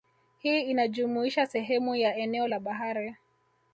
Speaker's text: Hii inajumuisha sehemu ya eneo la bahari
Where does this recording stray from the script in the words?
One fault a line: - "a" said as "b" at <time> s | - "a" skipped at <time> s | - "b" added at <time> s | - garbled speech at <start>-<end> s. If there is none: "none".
none